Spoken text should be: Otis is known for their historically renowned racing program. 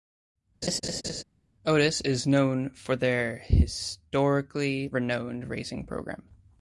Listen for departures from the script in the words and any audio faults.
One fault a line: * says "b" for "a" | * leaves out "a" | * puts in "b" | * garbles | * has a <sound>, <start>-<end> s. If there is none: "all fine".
* has a laugh, 0.6-1.2 s